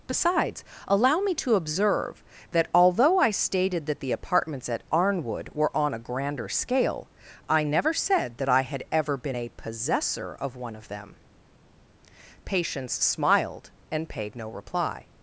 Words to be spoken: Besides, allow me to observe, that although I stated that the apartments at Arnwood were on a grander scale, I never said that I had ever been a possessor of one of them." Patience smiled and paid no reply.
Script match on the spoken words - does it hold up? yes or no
yes